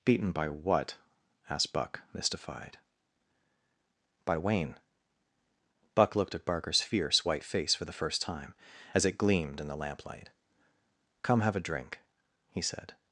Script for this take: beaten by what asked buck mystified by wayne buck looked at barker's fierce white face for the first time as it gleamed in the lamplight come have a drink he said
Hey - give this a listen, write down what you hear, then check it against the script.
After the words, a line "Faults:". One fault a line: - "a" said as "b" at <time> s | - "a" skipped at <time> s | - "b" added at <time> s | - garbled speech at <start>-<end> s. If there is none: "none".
beaten by what asked buck mystified by wayne buck looked at barker's fierce white face for the first time as it gleamed in the lamplight come have a drink he said
Faults:
none